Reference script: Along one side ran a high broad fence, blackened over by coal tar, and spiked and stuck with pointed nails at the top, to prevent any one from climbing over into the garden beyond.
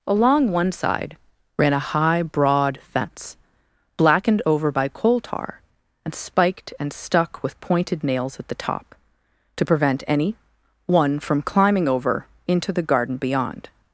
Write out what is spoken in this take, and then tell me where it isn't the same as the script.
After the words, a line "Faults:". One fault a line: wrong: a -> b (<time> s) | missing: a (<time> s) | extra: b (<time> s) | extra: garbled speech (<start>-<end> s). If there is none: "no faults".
Along one side ran a high broad fence, blackened over by coal tar, and spiked and stuck with pointed nails at the top, to prevent any one from climbing over into the garden beyond.
Faults:
no faults